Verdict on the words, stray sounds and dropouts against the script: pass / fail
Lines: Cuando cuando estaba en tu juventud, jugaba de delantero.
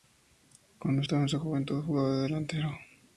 fail